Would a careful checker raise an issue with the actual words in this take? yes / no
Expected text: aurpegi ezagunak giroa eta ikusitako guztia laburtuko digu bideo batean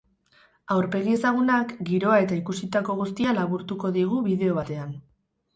no